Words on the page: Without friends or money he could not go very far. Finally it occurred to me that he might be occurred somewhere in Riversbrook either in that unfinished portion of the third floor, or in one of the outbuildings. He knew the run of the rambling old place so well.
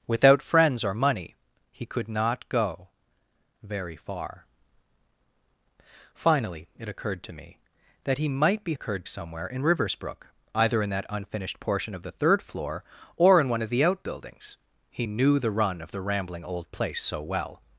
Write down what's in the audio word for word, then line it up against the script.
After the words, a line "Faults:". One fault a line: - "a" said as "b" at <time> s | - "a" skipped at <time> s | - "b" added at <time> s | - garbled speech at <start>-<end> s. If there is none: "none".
Without friends or money he could not go very far. Finally it occurred to me that he might be occurred somewhere in Riversbrook either in that unfinished portion of the third floor, or in one of the outbuildings. He knew the run of the rambling old place so well.
Faults:
none